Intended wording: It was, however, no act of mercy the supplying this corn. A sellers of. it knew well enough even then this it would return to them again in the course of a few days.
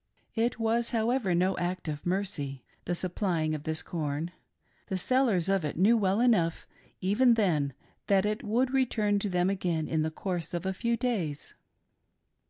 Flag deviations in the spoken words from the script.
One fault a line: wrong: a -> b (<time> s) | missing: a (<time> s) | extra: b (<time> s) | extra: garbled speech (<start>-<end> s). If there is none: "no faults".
extra: of (3.5 s)
wrong: A -> The (4.9 s)
wrong: this -> that (8.1 s)